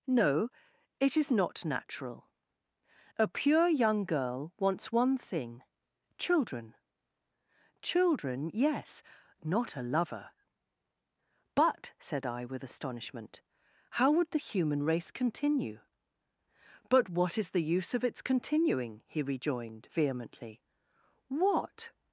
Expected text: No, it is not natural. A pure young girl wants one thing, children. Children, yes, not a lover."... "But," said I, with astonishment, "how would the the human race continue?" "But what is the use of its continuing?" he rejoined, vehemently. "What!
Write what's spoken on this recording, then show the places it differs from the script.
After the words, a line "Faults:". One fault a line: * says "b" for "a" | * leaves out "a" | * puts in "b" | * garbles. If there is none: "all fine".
No, it is not natural. A pure young girl wants one thing, children. Children, yes, not a lover."... "But," said I, with astonishment, "how would the human race continue?" "But what is the use of its continuing?" he rejoined, vehemently. "What!
Faults:
* leaves out "the"